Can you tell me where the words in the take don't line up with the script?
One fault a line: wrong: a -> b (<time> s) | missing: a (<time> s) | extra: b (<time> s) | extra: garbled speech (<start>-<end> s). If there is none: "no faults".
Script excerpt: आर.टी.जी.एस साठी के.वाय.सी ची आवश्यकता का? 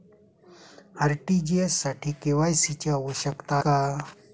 no faults